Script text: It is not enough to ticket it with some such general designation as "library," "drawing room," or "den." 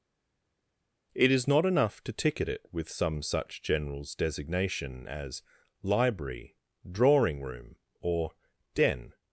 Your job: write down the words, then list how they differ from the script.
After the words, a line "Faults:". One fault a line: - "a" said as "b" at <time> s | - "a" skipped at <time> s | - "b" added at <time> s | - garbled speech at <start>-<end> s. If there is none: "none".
It is not enough to ticket it with some such generals designation as "library," "drawing room," or "den."
Faults:
- "general" said as "generals" at 3.6 s